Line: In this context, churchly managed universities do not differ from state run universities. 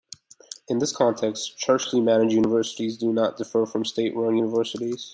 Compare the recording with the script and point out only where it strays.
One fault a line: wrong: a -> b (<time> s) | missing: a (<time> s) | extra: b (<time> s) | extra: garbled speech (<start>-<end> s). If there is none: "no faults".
no faults